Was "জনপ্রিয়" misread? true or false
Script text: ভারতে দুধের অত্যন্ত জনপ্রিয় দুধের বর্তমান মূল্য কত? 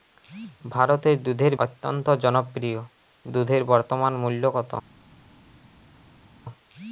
false